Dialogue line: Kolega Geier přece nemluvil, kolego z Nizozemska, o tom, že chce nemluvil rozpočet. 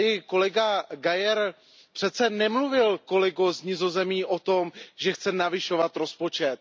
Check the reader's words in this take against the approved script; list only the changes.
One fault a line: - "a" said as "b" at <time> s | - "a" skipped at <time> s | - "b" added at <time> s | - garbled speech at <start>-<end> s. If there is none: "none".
- "nemluvil" said as "navyšovat" at 5.3 s